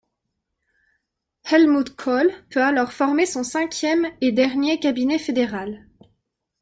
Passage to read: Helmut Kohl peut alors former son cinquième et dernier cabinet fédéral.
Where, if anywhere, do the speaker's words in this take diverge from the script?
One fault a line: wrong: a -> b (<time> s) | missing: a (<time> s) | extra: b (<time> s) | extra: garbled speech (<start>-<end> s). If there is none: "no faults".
no faults